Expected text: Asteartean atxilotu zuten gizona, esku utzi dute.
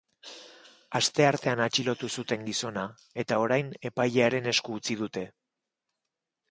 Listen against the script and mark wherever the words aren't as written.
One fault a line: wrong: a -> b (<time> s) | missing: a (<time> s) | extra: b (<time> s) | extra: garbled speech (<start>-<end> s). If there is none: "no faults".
extra: eta orain epailearen (3.2 s)